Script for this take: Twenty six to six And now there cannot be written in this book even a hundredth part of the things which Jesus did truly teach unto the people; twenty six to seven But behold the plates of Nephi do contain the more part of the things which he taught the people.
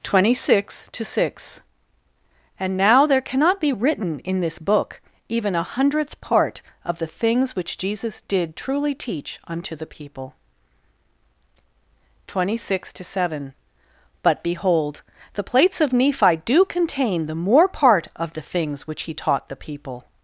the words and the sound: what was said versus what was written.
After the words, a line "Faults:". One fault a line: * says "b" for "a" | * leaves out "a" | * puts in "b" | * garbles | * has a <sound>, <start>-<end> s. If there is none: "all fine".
Twenty six to six And now there cannot be written in this book even a hundredth part of the things which Jesus did truly teach unto the people; twenty six to seven But behold the plates of Nephi do contain the more part of the things which he taught the people.
Faults:
all fine